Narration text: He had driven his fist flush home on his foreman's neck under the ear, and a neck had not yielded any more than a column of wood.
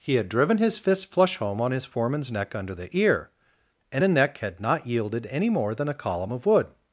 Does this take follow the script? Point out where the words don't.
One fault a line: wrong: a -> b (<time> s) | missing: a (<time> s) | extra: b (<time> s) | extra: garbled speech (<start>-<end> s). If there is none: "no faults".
no faults